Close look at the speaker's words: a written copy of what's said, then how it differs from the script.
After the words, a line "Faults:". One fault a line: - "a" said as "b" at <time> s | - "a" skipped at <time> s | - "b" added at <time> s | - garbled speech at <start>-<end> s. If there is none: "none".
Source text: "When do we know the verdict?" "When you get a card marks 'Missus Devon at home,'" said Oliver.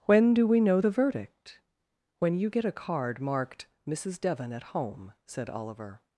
"When do we know the verdict?" "When you get a card marked 'Missus Devon at home,'" said Oliver.
Faults:
- "marks" said as "marked" at 3.2 s